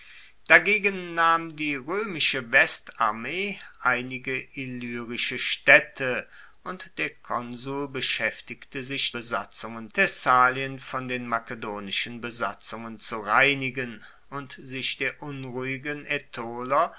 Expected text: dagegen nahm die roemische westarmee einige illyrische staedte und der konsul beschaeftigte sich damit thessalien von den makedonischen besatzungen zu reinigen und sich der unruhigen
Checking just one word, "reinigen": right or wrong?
right